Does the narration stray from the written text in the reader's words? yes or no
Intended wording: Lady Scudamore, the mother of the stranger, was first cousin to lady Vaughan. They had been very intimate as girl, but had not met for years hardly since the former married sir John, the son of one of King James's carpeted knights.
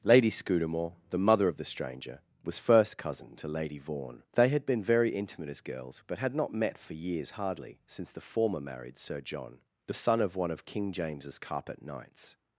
yes